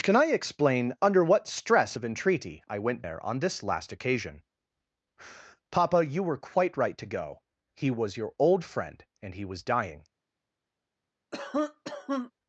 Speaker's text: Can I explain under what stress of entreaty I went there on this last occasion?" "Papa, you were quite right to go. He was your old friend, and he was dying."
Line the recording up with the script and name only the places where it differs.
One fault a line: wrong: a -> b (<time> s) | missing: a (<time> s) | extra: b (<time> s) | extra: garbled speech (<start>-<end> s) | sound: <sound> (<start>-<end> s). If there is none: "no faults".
sound: cough (11.3-12.3 s)